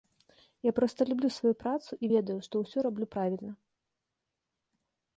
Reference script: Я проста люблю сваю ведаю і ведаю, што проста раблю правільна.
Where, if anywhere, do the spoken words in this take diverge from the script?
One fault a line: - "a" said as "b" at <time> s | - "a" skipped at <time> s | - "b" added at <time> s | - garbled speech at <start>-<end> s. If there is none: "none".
- "ведаю" said as "працу" at 1.6 s
- "проста" said as "ўсё" at 2.6 s